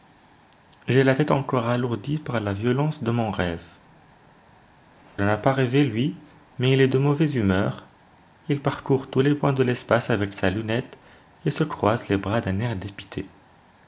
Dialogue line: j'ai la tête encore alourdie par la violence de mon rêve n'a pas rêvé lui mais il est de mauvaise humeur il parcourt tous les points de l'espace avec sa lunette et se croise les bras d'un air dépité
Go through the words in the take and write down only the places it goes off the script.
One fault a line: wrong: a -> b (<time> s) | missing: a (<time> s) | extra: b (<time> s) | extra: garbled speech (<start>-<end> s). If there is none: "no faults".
no faults